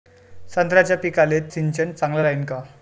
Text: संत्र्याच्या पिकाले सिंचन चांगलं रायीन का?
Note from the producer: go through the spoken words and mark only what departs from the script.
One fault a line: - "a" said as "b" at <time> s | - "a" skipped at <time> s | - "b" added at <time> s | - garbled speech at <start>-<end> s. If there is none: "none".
none